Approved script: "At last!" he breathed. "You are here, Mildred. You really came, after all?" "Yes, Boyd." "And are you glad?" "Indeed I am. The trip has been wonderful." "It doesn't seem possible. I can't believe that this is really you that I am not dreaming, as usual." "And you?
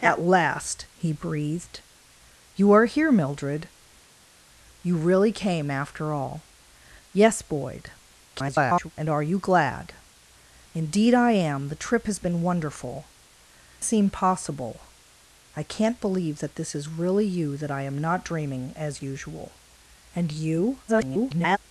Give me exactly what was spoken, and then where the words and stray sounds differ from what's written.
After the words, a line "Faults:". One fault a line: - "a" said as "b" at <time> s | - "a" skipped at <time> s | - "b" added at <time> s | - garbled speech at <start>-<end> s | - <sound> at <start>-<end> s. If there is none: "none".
"At last!" he breathed. "You are here, Mildred. You really came, after all?" "Yes, Boyd." [garbled] "And are you glad?" "Indeed I am. The trip has been wonderful." "Seem possible. I can't believe that this is really you that I am not dreaming, as usual." "And you? [garbled]
Faults:
- garbled speech at 8.3-8.9 s
- "It doesn't" skipped at 13.1 s
- garbled speech at 20.9-21.6 s